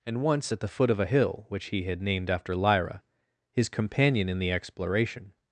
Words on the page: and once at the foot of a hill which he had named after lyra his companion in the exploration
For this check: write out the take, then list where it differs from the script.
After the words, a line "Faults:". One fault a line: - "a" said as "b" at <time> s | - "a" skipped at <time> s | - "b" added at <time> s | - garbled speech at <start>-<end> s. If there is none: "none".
and once at the foot of a hill which he had named after lyra his companion in the exploration
Faults:
none